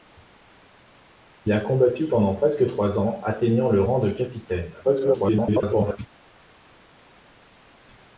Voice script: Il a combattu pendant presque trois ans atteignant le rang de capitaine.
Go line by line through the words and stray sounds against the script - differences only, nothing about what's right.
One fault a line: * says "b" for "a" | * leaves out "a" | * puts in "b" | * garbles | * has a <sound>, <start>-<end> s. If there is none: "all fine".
* garbles